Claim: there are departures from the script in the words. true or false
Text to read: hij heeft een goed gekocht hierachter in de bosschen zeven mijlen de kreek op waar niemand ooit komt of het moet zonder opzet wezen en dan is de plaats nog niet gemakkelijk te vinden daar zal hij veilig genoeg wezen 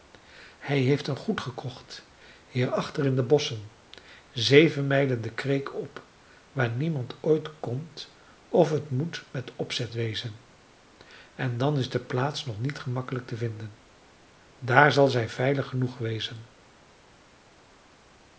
true